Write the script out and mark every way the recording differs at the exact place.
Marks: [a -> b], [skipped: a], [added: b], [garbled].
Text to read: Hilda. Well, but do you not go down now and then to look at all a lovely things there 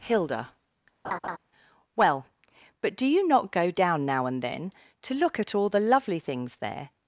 Hilda. Well, but do you not go down now and then to look at all [a -> the] lovely things there